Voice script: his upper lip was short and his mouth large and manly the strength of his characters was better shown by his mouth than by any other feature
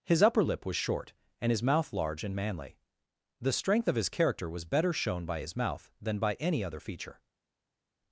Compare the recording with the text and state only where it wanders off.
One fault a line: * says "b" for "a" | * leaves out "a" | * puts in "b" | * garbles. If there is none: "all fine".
* says "character" for "characters"